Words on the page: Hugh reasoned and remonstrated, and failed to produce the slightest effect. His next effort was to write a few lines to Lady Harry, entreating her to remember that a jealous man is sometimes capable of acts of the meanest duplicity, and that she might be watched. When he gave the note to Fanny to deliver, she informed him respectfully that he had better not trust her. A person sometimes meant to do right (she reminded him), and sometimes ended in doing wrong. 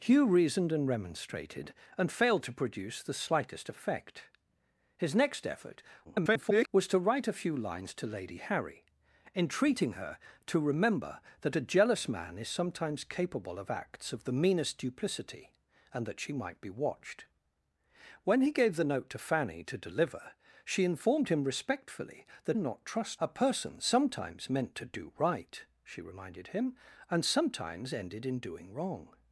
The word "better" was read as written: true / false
false